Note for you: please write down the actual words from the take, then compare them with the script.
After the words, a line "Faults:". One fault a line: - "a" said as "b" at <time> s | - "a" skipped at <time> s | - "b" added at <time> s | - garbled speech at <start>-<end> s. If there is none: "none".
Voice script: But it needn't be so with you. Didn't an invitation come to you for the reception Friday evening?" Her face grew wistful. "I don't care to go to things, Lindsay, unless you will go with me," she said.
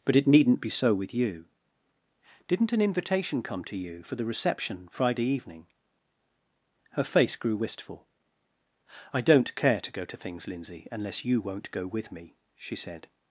But it needn't be so with you. Didn't an invitation come to you for the reception Friday evening?" Her face grew wistful. "I don't care to go to things, Lindsay, unless you won't go with me," she said.
Faults:
- "will" said as "won't" at 11.4 s